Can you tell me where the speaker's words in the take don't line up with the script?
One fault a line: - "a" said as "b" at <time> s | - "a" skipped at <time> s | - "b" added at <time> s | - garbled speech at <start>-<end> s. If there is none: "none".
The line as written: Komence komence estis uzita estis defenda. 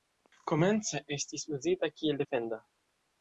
- "komence" skipped at 1.0 s
- "estis" said as "kiel" at 2.0 s